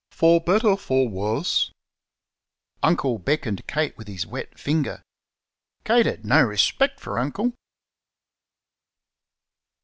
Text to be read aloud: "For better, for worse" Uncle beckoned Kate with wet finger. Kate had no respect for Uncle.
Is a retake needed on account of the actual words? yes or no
yes